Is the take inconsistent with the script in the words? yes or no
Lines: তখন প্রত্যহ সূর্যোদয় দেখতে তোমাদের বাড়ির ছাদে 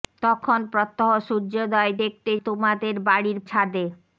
no